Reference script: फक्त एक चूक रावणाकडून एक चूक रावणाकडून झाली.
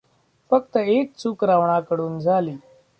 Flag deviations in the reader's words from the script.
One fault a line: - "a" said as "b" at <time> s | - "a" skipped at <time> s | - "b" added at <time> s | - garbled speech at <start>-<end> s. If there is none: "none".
- "एक चूक रावणाकडून" skipped at 2.2 s